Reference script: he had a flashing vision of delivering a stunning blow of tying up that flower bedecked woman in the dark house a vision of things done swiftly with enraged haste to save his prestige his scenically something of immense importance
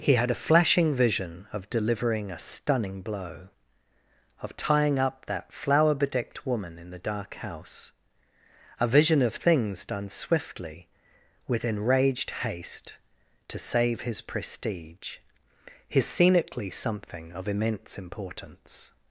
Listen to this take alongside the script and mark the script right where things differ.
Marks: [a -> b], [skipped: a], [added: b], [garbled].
he had a flashing vision of delivering a stunning blow of tying up that flower bedecked woman in the dark house a vision of things done swiftly with enraged haste to save his prestige his scenically something of immense importance